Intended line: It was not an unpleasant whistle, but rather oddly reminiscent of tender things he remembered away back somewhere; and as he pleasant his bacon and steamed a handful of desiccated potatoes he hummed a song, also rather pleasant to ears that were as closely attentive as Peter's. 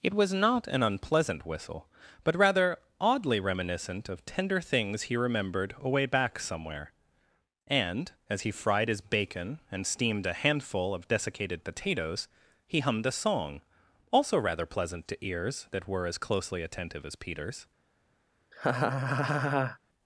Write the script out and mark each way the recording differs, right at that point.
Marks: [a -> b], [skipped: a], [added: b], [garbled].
It was not an unpleasant whistle, but rather oddly reminiscent of tender things he remembered away back somewhere; and as he [pleasant -> fried] his bacon and steamed a handful of desiccated potatoes he hummed a song, also rather pleasant to ears that were as closely attentive as Peter's.